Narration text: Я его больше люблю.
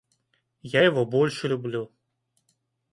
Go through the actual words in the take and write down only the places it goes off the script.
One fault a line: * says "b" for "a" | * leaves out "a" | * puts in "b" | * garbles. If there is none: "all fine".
all fine